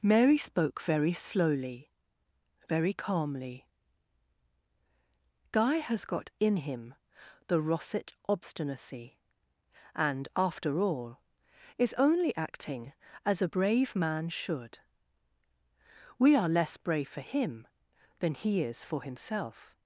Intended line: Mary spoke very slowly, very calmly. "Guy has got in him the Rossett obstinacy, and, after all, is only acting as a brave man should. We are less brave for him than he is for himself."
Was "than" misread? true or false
false